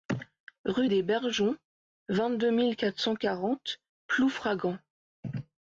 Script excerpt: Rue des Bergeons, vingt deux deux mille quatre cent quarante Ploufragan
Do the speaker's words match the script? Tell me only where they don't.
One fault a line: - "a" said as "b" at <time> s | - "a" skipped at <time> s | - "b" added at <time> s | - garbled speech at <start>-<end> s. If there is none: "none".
- "deux" skipped at 2.5 s